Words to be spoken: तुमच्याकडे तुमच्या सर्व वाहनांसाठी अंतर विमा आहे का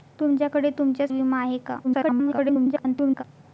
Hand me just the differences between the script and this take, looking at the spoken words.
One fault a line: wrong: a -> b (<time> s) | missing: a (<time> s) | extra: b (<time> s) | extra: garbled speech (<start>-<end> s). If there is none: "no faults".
missing: सर्व वाहनांसाठी अंतर (1.1 s)
extra: garbled speech (1.8-3.2 s)